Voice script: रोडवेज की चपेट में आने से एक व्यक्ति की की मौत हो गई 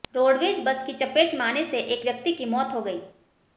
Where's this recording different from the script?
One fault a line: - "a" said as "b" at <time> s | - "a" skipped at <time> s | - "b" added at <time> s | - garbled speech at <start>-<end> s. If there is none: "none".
- "बस" added at 0.7 s
- "की" skipped at 2.4 s